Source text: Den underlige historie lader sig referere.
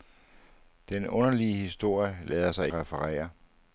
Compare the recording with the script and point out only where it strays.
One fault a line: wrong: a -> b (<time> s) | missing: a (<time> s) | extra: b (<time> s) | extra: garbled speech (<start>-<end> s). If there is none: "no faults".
no faults